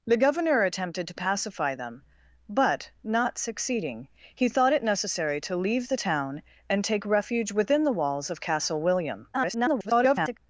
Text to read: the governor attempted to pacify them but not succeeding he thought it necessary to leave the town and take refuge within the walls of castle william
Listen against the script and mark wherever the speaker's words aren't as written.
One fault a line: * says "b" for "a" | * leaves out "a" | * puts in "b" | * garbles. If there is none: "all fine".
* garbles